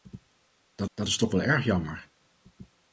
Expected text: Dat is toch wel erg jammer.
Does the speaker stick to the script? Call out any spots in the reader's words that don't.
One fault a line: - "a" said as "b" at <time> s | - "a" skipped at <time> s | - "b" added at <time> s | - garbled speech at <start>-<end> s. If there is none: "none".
- "dat" added at 0.9 s